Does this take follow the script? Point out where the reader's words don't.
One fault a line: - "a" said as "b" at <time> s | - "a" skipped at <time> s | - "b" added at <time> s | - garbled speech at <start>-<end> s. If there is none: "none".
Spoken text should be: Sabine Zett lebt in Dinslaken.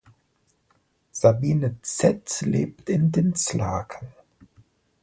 none